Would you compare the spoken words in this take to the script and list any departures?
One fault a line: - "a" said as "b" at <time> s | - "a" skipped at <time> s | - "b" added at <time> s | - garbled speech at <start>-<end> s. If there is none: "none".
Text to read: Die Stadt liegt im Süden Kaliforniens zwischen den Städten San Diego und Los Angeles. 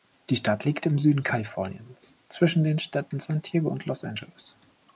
none